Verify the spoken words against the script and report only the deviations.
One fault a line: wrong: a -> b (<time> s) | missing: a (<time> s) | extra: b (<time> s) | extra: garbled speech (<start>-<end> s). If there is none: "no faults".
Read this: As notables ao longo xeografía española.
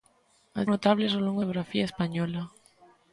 no faults